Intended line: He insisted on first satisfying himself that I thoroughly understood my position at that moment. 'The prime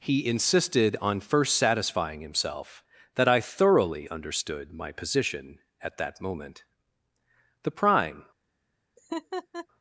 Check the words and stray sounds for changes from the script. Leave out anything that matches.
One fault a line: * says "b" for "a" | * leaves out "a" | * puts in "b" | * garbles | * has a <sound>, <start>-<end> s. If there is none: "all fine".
* has a laugh, 9.0-9.7 s